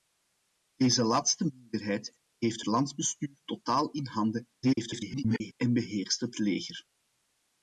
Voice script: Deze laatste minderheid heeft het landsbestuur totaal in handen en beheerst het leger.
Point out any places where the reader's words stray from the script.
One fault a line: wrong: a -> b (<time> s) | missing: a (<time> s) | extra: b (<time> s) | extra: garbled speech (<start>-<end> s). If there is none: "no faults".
missing: het (2.6 s)
extra: garbled speech (4.6-5.5 s)